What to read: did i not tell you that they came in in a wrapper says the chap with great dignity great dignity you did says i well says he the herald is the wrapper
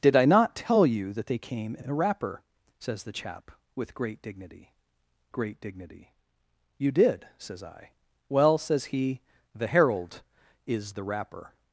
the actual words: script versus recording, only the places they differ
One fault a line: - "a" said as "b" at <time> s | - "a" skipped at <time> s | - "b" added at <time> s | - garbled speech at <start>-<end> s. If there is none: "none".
none